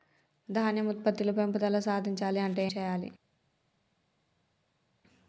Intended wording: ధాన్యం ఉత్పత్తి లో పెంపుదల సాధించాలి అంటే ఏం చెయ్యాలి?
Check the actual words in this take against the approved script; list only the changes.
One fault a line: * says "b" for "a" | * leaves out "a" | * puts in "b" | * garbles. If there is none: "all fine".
* leaves out "ఏం"